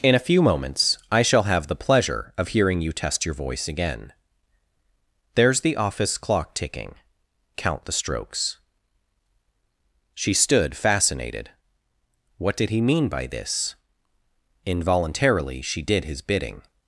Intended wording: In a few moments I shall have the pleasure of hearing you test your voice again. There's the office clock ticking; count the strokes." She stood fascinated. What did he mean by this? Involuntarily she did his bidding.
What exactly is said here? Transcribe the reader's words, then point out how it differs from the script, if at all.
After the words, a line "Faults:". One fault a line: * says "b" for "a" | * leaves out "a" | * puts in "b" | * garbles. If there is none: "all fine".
In a few moments I shall have the pleasure of hearing you test your voice again. There's the office clock ticking; count the strokes." She stood fascinated. What did he mean by this? Involuntarily she did his bidding.
Faults:
all fine